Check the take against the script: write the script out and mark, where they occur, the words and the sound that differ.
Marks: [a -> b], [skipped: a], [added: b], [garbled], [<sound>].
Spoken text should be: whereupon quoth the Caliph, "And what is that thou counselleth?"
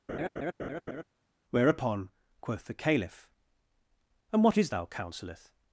[laugh] whereupon quoth the Caliph, "And what is [skipped: that] thou counselleth?"